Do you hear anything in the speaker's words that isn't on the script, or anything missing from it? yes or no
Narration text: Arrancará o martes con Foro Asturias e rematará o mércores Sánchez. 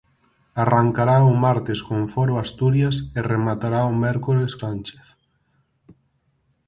no